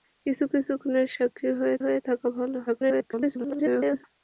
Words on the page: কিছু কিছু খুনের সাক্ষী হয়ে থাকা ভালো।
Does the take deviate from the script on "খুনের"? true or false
false